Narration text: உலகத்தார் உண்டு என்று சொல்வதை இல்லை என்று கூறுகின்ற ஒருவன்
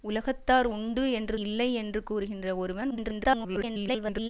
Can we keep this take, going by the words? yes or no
no